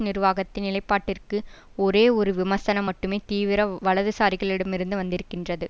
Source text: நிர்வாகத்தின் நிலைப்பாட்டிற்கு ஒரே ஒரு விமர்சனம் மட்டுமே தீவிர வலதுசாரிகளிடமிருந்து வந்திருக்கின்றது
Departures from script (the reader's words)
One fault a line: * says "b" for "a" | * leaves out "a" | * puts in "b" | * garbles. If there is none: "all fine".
all fine